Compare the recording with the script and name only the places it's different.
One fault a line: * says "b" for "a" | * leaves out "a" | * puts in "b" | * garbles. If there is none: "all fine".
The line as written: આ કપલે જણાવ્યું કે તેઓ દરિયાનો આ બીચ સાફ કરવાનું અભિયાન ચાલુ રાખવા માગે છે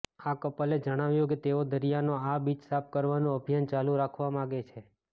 all fine